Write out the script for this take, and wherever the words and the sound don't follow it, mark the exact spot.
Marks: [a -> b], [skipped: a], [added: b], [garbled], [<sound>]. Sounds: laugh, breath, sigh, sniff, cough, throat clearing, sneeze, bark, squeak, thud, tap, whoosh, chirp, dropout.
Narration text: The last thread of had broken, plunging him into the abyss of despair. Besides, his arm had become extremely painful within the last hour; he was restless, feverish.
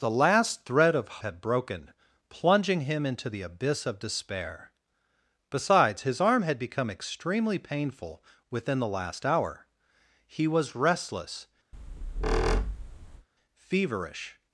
The last thread of had broken, plunging him into the abyss of despair. Besides, his arm had become extremely painful within the last hour; he was restless, [squeak] feverish.